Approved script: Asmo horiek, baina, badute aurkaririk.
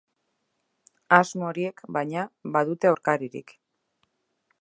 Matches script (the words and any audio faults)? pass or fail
pass